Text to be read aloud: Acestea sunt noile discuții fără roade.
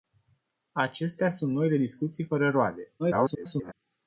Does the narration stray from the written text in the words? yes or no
yes